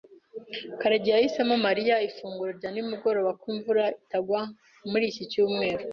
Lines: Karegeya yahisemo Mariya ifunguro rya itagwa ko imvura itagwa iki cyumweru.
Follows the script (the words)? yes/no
no